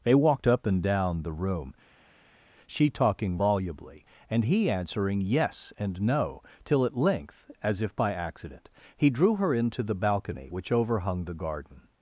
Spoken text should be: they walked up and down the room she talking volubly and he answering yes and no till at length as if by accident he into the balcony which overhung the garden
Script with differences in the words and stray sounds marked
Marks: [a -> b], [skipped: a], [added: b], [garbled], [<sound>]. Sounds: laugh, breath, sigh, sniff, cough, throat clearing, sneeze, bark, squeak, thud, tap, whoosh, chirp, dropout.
they walked up and down the room she talking volubly and he answering yes and no till at length as if by accident he [added: drew her] into the balcony which overhung the garden